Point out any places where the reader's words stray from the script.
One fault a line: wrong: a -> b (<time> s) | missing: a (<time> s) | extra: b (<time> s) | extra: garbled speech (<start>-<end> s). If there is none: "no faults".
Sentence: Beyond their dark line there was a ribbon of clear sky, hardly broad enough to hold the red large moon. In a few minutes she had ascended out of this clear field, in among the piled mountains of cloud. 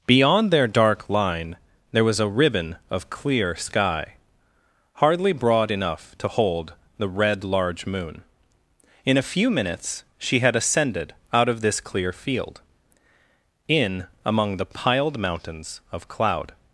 no faults